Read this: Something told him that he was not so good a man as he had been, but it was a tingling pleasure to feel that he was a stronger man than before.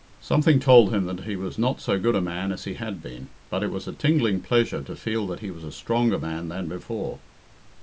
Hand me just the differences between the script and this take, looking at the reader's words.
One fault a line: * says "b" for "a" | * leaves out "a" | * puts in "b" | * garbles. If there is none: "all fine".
all fine